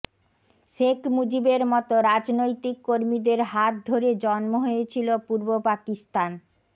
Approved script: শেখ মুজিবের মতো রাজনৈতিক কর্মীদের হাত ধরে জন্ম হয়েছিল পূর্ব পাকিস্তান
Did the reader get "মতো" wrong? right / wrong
right